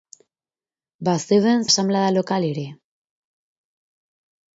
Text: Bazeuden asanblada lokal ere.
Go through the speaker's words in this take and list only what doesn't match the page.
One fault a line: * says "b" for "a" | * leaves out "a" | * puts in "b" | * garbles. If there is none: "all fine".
all fine